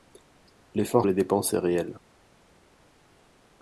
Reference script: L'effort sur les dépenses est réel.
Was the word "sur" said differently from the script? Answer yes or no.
yes